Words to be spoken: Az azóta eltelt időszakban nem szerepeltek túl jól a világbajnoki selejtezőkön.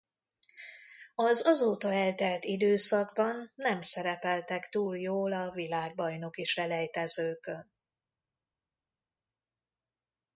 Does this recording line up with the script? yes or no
yes